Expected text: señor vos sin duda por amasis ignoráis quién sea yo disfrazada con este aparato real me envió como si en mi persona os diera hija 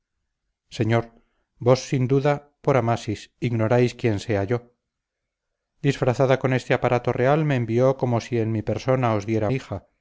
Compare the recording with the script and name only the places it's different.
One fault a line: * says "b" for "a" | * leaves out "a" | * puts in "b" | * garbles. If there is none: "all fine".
all fine